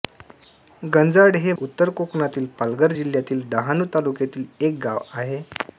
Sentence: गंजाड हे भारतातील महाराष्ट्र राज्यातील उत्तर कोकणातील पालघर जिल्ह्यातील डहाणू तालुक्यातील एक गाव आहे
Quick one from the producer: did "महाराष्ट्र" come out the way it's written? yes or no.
no